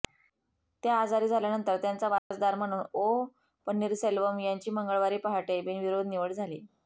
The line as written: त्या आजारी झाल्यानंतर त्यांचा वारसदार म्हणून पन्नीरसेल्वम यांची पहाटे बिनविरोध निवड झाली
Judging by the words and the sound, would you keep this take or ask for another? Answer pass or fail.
fail